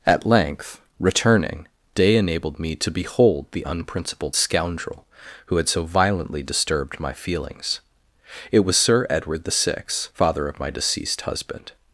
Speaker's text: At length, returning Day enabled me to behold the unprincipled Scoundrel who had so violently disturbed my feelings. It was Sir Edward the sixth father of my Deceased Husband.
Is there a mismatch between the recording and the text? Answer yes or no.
no